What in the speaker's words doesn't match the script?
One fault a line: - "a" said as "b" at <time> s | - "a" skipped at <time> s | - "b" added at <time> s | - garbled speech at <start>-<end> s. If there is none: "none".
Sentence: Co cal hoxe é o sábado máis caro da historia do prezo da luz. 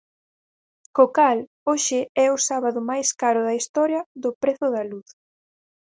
none